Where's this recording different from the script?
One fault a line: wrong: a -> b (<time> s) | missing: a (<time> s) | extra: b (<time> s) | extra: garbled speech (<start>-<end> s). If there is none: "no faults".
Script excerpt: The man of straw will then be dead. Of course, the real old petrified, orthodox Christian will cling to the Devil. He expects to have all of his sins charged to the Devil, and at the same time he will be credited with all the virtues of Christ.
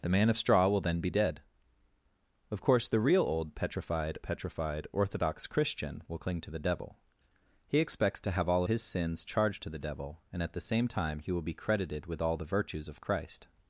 extra: petrified (4.2 s)
missing: of (8.6 s)